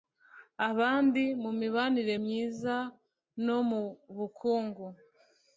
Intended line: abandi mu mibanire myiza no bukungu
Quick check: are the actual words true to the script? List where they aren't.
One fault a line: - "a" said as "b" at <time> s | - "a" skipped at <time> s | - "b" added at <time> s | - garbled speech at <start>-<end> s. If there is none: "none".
- "mu" added at 3.7 s